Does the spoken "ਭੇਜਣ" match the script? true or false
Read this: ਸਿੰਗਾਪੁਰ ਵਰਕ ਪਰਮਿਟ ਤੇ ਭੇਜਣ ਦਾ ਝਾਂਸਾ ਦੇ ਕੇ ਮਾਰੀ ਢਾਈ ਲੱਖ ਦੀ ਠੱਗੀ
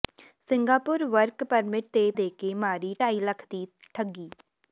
false